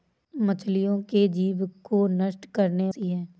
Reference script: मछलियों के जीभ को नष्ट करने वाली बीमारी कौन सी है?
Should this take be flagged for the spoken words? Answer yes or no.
yes